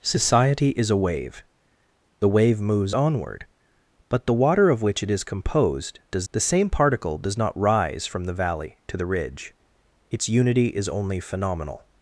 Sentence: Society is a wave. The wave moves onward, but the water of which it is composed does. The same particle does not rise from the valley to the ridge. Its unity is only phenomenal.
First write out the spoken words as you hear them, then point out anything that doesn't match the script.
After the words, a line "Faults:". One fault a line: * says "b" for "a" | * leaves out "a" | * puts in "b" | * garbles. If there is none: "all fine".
Society is a wave. The wave moves onward, but the water of which it is composed does. The same particle does not rise from the valley to the ridge. Its unity is only phenomenal.
Faults:
all fine